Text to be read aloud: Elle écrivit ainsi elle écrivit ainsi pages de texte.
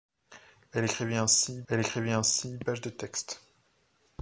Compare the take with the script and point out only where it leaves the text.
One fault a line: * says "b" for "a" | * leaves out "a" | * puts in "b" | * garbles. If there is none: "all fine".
all fine